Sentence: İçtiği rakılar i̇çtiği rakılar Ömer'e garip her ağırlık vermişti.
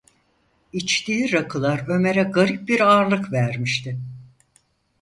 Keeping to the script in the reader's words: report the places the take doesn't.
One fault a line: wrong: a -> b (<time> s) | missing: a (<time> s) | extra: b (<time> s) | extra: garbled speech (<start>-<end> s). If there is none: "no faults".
missing: i̇çtiği rakılar (1.8 s)
wrong: her -> bir (2.7 s)